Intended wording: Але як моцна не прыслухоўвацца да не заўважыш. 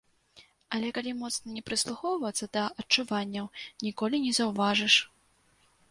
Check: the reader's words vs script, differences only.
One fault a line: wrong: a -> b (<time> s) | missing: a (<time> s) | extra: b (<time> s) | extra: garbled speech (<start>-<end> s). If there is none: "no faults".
wrong: як -> калі (1.0 s)
extra: адчуванняў ніколі (2.8 s)